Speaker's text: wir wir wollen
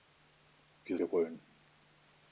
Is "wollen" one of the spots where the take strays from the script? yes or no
no